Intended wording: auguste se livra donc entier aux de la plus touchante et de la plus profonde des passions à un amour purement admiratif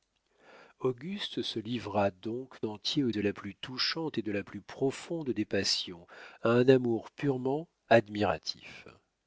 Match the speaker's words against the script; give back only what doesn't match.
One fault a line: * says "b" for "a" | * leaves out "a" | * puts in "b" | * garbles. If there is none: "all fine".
all fine